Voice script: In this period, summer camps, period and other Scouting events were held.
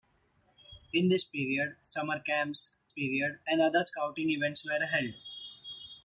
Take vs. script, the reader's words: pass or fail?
pass